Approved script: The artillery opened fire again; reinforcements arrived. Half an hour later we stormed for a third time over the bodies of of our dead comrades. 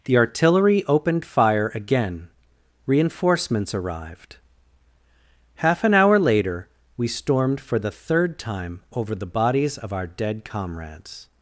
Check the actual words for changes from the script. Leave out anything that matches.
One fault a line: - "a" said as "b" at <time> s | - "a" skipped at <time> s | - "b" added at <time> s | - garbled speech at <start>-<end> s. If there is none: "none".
- "a" said as "the" at 7.8 s
- "of" skipped at 9.9 s